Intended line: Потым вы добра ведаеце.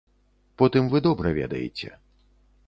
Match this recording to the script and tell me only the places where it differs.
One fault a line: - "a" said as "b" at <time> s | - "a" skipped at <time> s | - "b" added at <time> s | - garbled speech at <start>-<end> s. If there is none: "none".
none